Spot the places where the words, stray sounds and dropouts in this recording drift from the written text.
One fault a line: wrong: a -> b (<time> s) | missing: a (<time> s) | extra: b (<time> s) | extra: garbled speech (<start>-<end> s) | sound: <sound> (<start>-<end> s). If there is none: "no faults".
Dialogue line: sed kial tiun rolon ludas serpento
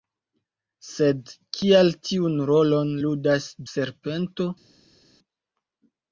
no faults